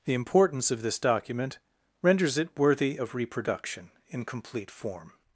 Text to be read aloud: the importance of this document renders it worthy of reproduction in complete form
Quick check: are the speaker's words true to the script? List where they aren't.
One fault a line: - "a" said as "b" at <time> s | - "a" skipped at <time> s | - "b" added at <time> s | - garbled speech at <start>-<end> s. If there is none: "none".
none